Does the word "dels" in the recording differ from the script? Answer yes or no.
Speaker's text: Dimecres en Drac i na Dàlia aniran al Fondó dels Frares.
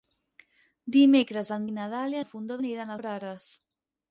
yes